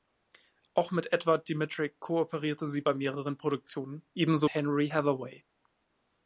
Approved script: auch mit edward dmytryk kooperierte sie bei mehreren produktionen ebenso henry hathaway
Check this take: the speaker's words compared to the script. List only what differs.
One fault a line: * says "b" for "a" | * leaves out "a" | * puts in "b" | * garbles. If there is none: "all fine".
all fine